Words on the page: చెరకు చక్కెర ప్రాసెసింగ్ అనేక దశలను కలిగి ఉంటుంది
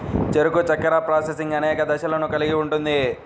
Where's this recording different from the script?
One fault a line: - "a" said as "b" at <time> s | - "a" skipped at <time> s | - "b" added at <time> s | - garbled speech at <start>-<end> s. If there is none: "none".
none